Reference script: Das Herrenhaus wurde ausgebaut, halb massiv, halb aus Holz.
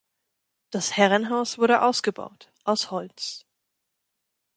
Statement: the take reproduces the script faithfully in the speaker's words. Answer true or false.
false